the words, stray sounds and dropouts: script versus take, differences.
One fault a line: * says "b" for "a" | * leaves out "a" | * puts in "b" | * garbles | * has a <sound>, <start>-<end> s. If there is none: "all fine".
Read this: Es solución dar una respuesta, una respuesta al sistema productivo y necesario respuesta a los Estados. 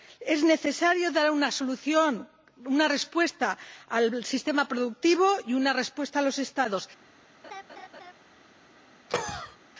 * says "necesario" for "solución"
* says "solución" for "respuesta"
* says "una" for "necesario"
* has a laugh, 7.4-8.1 s
* has a cough, 9.1-9.6 s